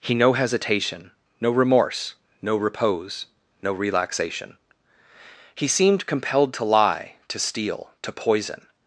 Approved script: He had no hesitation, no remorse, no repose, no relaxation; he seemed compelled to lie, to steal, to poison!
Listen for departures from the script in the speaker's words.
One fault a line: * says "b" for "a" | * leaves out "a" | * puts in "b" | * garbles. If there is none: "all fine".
* leaves out "had"